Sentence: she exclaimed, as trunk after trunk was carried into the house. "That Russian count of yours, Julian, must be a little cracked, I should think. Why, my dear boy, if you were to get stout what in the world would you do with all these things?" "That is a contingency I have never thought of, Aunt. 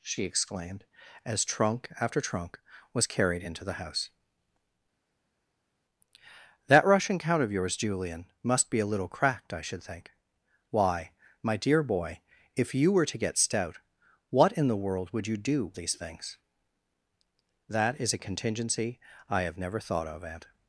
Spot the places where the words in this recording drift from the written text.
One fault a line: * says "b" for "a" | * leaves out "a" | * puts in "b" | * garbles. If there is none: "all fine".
* leaves out "with all"